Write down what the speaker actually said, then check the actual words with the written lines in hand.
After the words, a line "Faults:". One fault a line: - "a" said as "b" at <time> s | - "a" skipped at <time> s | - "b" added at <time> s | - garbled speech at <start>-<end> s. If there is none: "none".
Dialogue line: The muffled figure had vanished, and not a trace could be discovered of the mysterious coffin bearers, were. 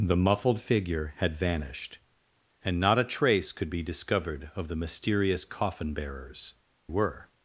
The muffled figure had vanished, and not a trace could be discovered of the mysterious coffin bearers, were.
Faults:
none